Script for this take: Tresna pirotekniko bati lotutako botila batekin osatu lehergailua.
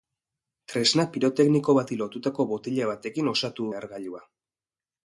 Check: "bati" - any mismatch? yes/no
no